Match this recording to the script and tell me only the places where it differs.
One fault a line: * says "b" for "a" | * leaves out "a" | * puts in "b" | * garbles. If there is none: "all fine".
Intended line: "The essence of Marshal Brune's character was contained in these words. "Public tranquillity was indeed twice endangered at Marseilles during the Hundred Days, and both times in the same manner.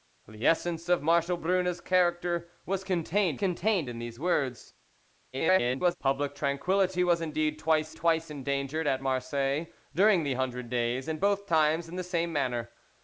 * puts in "contained"
* garbles
* puts in "twice"